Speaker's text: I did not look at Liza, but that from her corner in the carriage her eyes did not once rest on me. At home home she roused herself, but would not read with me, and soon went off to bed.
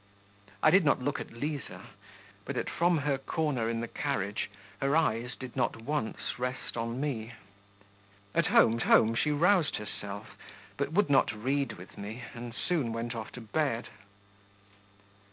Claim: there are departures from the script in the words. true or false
false